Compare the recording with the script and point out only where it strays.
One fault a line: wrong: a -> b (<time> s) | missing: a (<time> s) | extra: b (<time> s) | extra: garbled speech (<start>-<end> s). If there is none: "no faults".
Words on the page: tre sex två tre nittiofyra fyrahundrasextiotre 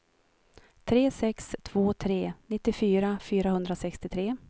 no faults